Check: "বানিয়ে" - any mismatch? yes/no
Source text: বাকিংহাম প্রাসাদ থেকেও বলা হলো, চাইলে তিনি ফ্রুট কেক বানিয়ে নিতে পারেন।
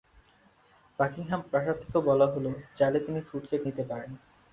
yes